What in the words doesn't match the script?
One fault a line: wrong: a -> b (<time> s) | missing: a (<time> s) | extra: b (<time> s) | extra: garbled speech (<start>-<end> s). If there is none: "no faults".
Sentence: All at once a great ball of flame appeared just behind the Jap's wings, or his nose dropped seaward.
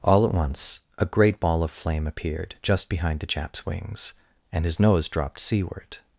wrong: or -> and (4.5 s)